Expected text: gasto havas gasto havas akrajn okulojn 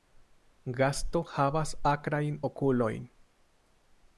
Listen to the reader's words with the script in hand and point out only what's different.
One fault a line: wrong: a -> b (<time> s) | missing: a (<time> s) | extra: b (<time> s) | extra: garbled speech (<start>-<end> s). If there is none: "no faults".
missing: gasto havas (1.7 s)